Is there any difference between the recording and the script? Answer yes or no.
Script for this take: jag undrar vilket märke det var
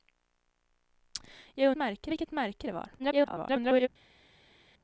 yes